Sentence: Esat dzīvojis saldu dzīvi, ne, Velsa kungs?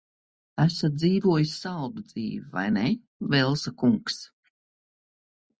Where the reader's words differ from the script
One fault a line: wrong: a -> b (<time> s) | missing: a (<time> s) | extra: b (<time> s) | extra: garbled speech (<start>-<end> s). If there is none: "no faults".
extra: vai (2.5 s)